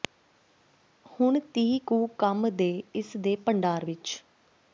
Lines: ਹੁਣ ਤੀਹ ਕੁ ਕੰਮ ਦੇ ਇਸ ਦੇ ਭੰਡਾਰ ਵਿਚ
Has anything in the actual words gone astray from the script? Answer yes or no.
no